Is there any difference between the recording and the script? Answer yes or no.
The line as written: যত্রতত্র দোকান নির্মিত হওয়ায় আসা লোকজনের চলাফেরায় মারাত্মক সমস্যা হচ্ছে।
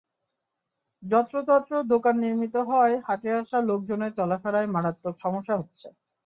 yes